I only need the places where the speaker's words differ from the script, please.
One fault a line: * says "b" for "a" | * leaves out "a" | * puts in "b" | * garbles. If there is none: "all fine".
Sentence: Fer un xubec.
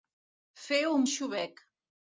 all fine